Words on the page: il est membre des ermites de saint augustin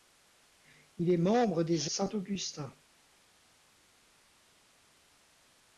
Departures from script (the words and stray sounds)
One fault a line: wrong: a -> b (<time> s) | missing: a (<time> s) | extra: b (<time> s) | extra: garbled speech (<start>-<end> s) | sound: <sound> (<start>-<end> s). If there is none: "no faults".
missing: ermites de (1.9 s)